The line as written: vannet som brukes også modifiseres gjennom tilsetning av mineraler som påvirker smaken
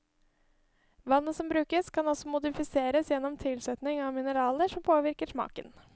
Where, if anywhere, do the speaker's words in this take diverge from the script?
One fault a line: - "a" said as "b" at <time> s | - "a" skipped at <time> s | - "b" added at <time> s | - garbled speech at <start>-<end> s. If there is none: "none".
- "kan" added at 1.9 s